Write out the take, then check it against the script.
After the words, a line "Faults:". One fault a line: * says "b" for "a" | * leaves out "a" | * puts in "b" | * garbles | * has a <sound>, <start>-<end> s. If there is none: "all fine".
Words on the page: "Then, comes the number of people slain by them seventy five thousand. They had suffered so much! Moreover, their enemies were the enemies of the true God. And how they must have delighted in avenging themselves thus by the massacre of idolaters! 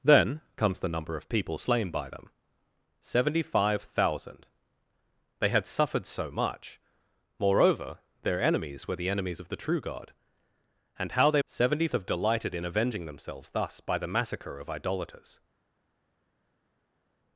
"Then, comes the number of people slain by them seventy five thousand. They had suffered so much! Moreover, their enemies were the enemies of the true God. And how they seventy have delighted in avenging themselves thus by the massacre of idolaters!
Faults:
* says "seventy" for "must"